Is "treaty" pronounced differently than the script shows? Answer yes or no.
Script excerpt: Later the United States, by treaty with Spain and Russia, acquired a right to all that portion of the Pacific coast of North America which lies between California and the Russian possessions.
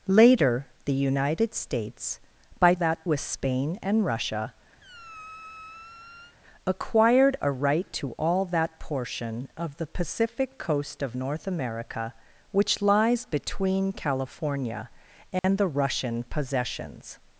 yes